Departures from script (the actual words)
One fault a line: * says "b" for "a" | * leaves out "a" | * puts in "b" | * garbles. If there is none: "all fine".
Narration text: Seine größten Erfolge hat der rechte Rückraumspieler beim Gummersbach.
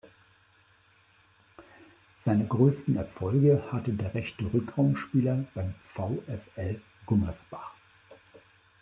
* says "hatte" for "hat"
* puts in "VfL"